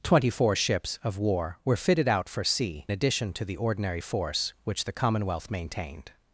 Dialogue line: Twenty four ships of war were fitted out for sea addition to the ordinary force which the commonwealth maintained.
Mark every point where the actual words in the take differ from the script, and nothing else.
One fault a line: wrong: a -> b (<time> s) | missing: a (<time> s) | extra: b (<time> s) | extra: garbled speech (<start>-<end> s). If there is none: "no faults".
no faults